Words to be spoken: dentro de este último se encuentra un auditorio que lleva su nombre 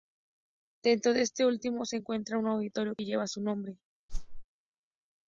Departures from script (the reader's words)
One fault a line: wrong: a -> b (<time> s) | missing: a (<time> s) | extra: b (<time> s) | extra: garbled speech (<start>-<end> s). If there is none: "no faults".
no faults